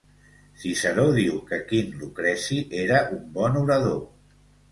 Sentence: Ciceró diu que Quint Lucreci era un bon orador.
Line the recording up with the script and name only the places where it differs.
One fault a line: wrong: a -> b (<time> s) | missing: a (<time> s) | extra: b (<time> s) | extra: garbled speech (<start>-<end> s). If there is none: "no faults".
no faults